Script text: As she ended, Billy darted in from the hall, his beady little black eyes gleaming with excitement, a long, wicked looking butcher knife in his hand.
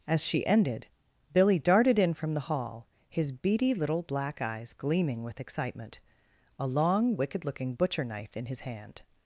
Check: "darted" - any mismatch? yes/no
no